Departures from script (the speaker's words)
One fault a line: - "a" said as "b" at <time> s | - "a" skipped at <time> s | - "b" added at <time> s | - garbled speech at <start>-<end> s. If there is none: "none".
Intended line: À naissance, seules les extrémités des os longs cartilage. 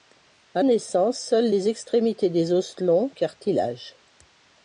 none